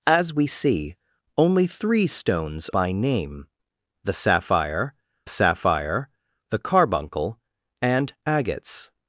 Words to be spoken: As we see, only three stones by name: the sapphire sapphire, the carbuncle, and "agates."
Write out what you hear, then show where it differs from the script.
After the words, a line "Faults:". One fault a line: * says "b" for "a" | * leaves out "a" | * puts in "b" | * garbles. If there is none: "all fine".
As we see, only three stones by name: the sapphire sapphire, the carbuncle, and "agates."
Faults:
all fine